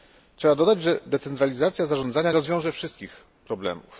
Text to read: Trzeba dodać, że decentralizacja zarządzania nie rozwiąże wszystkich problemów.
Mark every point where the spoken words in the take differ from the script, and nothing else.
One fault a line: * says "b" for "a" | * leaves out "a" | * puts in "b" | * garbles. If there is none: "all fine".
* leaves out "nie"